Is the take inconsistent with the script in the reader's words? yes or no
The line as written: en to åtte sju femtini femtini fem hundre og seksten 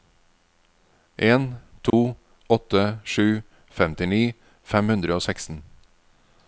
yes